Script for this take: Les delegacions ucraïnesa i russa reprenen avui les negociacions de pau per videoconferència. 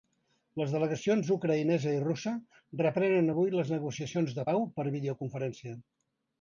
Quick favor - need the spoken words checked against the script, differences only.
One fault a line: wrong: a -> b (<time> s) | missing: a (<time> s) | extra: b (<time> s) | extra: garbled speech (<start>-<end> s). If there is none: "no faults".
no faults